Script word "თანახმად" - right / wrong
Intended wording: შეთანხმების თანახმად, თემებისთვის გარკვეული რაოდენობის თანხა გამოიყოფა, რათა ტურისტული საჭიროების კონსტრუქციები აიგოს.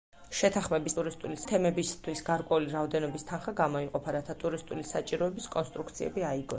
wrong